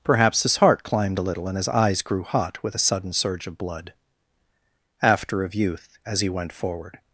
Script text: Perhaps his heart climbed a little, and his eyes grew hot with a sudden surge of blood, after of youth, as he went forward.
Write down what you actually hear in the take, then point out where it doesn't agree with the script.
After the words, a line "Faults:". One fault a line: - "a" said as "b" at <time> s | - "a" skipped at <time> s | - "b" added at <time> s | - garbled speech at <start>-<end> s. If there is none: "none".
Perhaps his heart climbed a little, and his eyes grew hot with a sudden surge of blood, after of youth, as he went forward.
Faults:
none